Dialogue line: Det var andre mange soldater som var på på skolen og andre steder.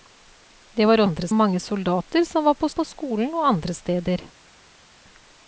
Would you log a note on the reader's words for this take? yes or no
no